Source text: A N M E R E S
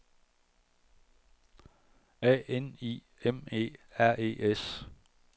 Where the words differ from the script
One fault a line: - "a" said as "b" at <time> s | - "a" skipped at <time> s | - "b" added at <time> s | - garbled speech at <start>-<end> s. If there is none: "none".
- "I" added at 2.8 s